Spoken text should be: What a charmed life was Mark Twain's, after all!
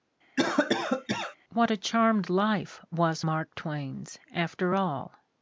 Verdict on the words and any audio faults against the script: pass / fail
fail